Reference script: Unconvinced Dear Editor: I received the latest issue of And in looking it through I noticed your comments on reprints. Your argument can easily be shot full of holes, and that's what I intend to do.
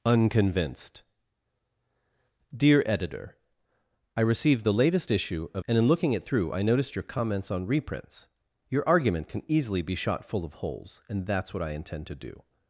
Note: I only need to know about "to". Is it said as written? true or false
true